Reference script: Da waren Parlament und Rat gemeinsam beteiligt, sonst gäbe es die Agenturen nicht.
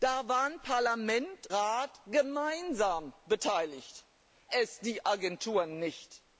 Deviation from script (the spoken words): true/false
true